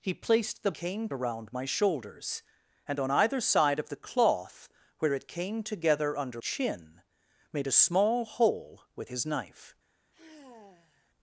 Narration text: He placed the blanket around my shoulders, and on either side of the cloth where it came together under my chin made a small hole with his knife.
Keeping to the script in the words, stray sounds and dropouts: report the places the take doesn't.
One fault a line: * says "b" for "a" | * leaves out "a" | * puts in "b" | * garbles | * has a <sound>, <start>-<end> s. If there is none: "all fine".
* says "came" for "blanket"
* leaves out "my"
* has a sigh, 10.1-11.1 s